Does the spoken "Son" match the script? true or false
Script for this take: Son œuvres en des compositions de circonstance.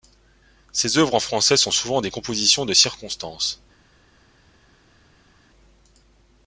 false